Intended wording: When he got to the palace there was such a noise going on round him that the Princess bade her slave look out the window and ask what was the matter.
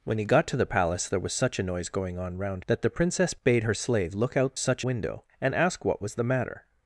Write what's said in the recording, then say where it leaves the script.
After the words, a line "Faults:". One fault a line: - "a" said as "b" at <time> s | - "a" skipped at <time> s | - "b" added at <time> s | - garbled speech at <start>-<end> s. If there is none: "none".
When he got to the palace there was such a noise going on round that the Princess bade her slave look out such window and ask what was the matter.
Faults:
- "him" skipped at 2.6 s
- "the" said as "such" at 4.6 s